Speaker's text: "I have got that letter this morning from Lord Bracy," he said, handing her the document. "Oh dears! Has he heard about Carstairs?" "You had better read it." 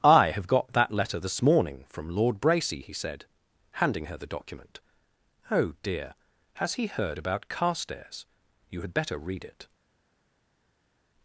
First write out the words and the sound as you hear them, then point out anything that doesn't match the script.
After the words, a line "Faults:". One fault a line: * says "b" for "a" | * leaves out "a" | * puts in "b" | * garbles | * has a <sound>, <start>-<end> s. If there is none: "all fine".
"I have got that letter this morning from Lord Bracy," he said, handing her the document. "Oh dear! Has he heard about Carstairs?" "You had better read it."
Faults:
* says "dear" for "dears"